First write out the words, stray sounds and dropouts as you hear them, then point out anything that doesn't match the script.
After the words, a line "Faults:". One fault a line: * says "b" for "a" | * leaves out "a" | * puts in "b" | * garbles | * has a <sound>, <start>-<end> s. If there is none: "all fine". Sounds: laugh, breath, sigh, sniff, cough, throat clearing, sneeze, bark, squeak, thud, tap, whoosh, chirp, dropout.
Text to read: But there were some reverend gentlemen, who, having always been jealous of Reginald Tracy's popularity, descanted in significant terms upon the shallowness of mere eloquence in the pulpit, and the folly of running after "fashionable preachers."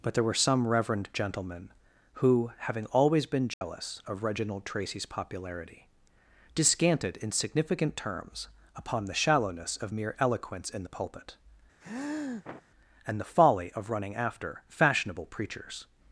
But there were some reverend gentlemen, who, having always been jealous of Reginald Tracy's popularity, descanted in significant terms upon the shallowness of mere eloquence in the pulpit, and the folly of running after "fashionable preachers."
Faults:
* has a dropout, 3.5-3.6 s
* has a sniff, 11.8-12.6 s